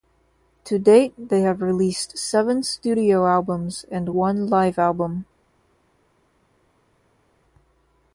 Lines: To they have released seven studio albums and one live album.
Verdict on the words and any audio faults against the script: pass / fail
fail